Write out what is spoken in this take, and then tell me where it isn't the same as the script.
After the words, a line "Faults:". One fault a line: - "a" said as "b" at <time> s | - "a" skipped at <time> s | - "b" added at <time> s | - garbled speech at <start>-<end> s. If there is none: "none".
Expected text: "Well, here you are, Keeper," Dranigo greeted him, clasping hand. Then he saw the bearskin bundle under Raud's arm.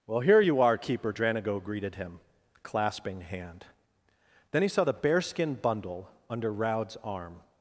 "Well, here you are, Keeper," Dranigo greeted him, clasping hand. Then he saw the bearskin bundle under Raud's arm.
Faults:
none